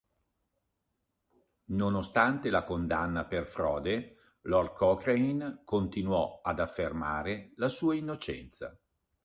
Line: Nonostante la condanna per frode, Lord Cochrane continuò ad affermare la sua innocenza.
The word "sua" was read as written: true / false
true